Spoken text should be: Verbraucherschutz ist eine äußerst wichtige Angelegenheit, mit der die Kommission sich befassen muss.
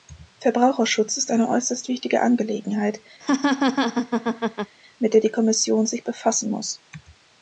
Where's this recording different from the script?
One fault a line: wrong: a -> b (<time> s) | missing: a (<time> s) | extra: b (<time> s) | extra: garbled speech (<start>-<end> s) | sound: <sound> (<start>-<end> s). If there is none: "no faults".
sound: laugh (3.2-4.7 s)